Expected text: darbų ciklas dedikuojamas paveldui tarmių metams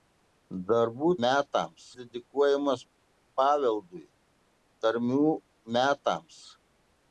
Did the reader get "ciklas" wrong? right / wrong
wrong